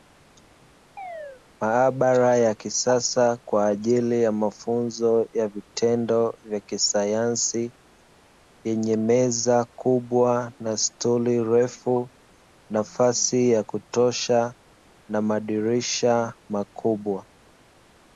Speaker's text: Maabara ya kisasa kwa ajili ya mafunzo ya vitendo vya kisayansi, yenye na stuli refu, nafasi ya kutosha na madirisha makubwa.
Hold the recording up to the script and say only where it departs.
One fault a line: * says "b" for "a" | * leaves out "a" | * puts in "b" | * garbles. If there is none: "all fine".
* puts in "meza kubwa"